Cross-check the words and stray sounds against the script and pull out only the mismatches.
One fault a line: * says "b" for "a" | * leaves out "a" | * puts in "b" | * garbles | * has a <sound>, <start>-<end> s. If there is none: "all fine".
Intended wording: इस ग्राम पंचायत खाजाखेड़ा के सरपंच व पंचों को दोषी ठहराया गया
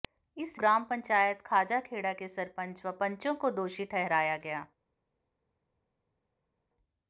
all fine